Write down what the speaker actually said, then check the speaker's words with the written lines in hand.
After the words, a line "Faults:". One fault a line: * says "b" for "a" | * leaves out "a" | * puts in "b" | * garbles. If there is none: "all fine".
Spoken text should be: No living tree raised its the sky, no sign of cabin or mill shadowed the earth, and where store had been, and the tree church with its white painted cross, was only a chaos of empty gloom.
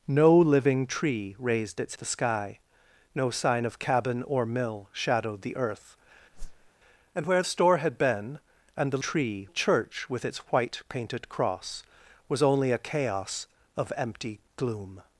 No living tree raised its the sky, no sign of cabin or mill shadowed the earth, and where store had been, and the tree church with its white painted cross, was only a chaos of empty gloom.
Faults:
all fine